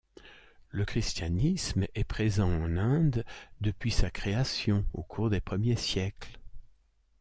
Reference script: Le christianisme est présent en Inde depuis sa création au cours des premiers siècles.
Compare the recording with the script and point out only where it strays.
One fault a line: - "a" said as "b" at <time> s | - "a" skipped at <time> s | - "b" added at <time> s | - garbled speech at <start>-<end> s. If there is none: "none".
none